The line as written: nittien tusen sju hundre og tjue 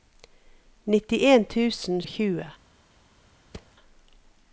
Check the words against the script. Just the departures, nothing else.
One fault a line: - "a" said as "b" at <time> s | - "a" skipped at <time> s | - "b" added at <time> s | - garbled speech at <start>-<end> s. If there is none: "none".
- "sju hundre" skipped at 2.0 s